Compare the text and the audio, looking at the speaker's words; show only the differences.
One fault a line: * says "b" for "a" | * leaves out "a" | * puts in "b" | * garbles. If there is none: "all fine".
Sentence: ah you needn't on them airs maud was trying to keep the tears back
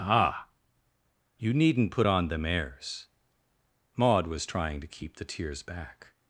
* puts in "put"